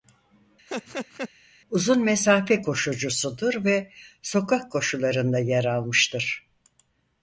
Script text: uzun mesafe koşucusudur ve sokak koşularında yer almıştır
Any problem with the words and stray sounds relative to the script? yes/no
yes